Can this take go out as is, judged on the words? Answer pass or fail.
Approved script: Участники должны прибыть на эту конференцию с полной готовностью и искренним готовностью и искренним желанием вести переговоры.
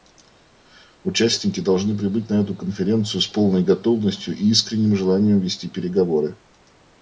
fail